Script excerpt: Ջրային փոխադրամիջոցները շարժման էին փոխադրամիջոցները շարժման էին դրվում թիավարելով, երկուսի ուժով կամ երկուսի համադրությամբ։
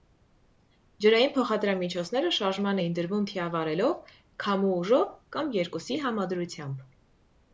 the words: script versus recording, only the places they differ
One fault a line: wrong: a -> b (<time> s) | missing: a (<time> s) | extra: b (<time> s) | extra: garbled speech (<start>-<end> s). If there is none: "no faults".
missing: փոխադրամիջոցները շարժման էին (2.9 s)
wrong: երկուսի -> քամու (4.5 s)